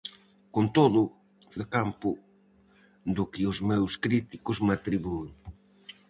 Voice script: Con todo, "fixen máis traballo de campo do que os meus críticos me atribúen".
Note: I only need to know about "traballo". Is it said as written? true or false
false